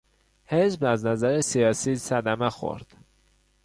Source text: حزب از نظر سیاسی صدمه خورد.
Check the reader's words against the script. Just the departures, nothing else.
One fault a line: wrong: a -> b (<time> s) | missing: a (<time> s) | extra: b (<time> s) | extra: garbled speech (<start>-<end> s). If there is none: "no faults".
no faults